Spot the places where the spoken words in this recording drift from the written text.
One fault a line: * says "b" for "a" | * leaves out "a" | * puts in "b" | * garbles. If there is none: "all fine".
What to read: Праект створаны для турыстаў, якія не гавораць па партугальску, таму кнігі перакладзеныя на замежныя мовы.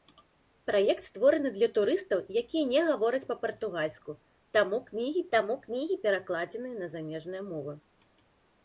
* puts in "таму кнігі"